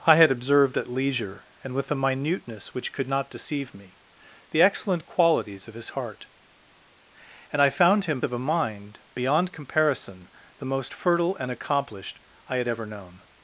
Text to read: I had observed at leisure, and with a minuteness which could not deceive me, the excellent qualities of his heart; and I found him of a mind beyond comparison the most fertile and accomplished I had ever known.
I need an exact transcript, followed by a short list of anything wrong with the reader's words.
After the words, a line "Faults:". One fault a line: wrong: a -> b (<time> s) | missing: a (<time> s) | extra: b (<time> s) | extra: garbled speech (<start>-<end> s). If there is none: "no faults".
I had observed at leisure, and with a minuteness which could not deceive me, the excellent qualities of his heart; and I found him of a mind beyond comparison the most fertile and accomplished I had ever known.
Faults:
no faults